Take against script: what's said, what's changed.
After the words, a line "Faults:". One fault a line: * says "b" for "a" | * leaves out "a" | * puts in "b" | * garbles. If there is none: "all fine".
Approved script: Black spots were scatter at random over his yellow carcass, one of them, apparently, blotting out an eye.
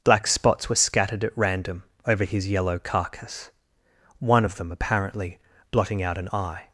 Black spots were scattered at random over his yellow carcass, one of them, apparently, blotting out an eye.
Faults:
* says "scattered" for "scatter"